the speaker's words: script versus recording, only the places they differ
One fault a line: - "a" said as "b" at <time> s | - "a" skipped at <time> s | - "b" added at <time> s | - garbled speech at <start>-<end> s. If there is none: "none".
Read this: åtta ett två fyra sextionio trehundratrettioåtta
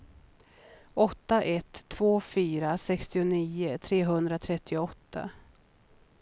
none